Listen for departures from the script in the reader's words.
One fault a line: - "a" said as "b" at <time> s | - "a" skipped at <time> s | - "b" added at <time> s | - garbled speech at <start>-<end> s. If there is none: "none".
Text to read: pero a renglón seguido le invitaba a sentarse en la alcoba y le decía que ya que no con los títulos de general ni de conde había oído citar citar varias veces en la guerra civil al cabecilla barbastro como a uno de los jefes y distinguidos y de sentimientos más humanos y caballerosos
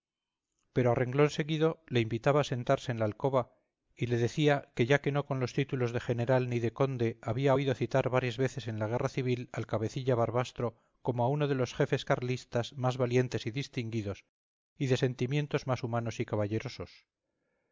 - "citar" skipped at 8.1 s
- "carlistas más valientes" added at 12.0 s